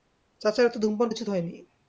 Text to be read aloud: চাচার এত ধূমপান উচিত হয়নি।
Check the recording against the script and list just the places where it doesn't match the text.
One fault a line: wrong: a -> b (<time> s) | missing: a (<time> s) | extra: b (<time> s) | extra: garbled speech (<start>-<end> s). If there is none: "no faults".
no faults